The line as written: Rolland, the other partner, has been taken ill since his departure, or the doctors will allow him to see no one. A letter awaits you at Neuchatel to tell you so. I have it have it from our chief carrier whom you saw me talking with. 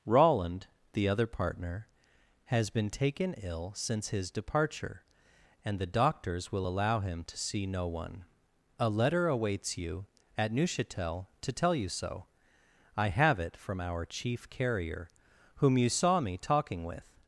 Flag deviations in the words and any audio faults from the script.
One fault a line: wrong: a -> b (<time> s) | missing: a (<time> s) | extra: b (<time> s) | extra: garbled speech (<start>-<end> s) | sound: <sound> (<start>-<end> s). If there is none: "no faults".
wrong: or -> and (5.6 s)
missing: have it (13.6 s)